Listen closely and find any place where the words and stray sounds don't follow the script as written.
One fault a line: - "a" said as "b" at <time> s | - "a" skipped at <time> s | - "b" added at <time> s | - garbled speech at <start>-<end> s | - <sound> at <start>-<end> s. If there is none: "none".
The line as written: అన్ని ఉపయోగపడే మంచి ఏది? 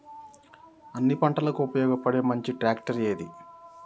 - "పంటలకు" added at 1.1 s
- "ట్రాక్టర్" added at 2.5 s